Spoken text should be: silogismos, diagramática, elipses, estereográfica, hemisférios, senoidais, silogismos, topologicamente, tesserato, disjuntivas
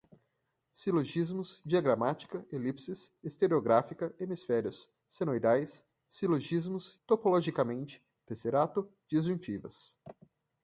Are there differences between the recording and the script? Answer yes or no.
no